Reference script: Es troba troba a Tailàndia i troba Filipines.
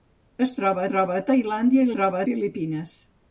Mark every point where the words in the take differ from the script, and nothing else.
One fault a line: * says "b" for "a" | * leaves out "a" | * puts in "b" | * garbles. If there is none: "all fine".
all fine